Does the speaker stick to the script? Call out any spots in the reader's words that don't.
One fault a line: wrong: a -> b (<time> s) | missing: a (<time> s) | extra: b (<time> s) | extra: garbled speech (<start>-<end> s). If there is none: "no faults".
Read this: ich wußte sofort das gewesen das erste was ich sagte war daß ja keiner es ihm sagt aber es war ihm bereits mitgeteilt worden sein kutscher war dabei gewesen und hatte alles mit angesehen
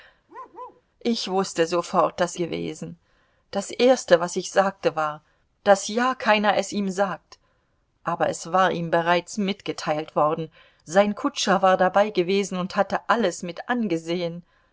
no faults